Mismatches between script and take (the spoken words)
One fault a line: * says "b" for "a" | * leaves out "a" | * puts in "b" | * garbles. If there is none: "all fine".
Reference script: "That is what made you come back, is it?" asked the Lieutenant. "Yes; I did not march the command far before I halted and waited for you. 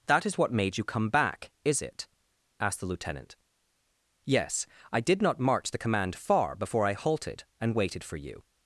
all fine